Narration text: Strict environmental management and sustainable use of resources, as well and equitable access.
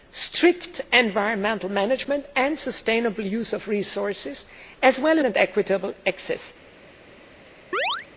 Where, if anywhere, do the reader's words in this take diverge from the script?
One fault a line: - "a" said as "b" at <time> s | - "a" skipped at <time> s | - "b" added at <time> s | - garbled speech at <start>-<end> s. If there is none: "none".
none